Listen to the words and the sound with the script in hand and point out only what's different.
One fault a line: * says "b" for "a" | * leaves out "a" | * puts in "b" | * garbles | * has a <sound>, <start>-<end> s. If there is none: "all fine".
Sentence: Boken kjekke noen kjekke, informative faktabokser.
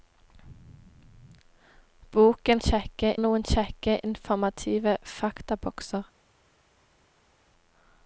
all fine